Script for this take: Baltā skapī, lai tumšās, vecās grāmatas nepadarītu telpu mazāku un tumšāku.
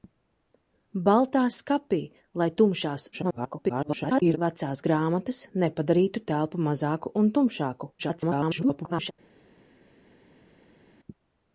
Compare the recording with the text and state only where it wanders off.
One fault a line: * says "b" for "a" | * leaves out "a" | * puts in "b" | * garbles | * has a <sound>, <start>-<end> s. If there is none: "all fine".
* garbles
* garbles